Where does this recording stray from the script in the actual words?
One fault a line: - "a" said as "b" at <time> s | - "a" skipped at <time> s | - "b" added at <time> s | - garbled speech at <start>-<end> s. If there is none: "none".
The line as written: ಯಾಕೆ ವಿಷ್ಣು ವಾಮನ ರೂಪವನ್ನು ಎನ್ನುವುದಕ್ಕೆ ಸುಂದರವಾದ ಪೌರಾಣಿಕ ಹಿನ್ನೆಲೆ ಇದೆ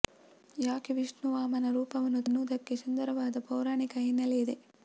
none